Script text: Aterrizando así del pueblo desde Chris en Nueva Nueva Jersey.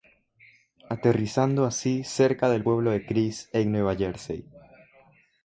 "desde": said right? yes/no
no